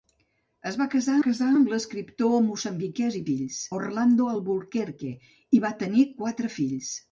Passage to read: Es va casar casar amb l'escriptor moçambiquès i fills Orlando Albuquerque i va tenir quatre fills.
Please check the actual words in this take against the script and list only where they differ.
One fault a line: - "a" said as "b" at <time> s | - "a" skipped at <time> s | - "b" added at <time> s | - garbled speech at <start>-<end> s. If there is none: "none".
none